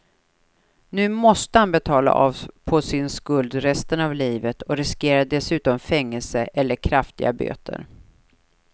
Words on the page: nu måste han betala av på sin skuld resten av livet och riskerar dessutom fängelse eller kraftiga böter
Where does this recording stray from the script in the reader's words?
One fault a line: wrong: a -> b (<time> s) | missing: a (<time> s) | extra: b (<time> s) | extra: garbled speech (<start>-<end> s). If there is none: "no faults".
no faults